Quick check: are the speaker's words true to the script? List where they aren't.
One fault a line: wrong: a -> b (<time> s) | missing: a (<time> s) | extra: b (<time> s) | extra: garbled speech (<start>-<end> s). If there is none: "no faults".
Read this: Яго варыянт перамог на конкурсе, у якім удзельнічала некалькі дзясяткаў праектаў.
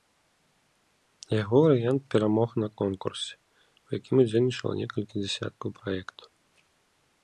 no faults